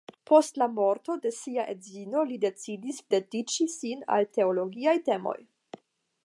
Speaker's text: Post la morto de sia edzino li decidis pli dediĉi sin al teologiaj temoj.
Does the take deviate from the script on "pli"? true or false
true